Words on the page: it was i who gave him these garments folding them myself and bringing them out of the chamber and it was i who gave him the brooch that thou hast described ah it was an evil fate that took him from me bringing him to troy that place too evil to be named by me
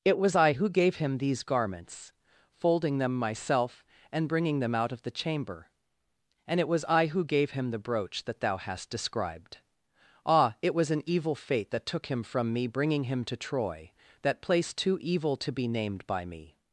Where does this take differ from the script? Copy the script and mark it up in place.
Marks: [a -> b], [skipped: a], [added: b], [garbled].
it was i who gave him these garments folding them myself and bringing them out of the chamber and it was i who gave him the brooch that thou hast described ah it was an evil fate that took him from me bringing him to troy that place too evil to be named by me